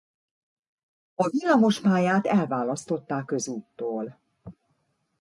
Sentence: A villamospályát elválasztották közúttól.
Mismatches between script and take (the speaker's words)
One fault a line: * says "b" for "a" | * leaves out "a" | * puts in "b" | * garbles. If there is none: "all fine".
all fine